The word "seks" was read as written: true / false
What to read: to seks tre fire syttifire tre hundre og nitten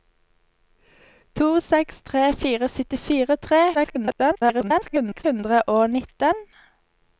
true